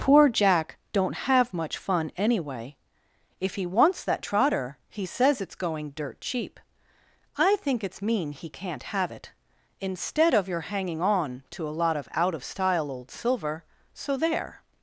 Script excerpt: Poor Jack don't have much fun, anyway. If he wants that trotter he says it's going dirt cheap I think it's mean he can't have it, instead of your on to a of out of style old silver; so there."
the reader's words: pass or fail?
fail